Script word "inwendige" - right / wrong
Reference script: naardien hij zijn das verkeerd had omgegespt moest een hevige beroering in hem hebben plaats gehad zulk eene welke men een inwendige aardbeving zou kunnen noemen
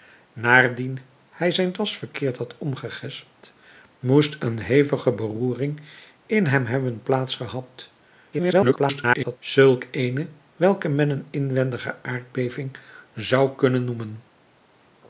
right